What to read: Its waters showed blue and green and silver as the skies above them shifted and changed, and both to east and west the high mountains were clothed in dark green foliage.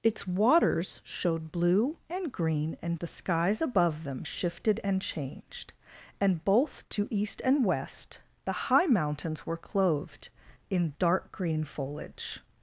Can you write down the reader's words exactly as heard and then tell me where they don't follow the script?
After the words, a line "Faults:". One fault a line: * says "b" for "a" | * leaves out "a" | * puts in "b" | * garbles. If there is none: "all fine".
Its waters showed blue and green and the skies above them shifted and changed, and both to east and west the high mountains were clothed in dark green foliage.
Faults:
* leaves out "silver as"